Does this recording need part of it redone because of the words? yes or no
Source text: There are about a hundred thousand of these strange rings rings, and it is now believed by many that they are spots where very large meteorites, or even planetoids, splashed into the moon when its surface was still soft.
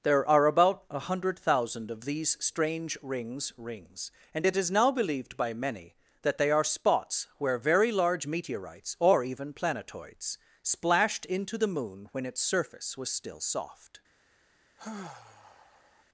no